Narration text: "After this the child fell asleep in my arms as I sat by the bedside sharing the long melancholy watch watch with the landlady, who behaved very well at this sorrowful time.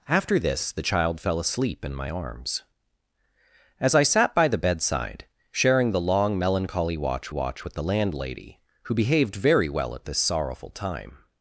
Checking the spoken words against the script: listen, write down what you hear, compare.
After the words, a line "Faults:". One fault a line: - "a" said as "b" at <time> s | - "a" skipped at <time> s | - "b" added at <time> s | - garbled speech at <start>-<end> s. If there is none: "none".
"After this the child fell asleep in my arms as I sat by the bedside sharing the long melancholy watch watch with the landlady, who behaved very well at this sorrowful time.
Faults:
none